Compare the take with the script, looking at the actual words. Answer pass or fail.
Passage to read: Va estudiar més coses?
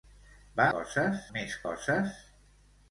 fail